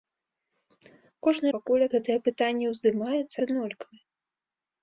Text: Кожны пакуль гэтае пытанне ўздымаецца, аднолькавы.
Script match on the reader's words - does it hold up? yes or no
yes